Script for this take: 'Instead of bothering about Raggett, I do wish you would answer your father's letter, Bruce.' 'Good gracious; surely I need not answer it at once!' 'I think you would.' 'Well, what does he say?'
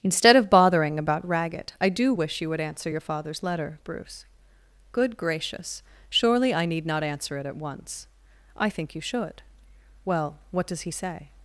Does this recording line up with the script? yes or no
no